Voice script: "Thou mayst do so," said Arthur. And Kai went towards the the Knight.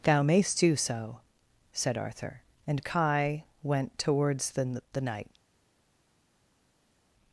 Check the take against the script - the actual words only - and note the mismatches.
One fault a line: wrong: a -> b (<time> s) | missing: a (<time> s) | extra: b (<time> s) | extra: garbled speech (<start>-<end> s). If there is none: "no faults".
no faults